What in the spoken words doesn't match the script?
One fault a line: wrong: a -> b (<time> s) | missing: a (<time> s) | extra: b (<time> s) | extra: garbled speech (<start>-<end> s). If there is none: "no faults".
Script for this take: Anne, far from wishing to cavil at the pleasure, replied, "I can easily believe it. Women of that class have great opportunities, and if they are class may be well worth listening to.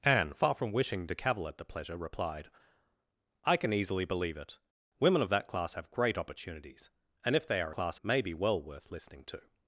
no faults